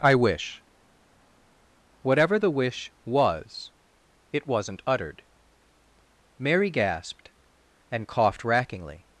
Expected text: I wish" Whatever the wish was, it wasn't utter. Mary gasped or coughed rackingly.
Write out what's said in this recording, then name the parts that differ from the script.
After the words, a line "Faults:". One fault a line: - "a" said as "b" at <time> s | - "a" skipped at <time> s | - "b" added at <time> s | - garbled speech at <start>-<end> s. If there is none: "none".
I wish" Whatever the wish was, it wasn't uttered. Mary gasped and coughed rackingly.
Faults:
- "utter" said as "uttered" at 4.9 s
- "or" said as "and" at 7.9 s